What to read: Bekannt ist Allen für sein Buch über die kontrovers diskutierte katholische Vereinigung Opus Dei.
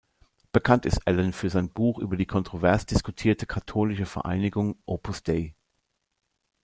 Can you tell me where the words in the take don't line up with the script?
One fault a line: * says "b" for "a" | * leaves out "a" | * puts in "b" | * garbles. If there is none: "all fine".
all fine